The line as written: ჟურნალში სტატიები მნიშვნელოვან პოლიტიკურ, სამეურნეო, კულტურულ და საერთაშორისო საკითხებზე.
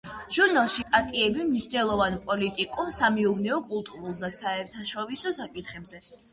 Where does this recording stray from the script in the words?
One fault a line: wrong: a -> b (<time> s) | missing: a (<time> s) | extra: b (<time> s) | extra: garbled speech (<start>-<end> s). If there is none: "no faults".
no faults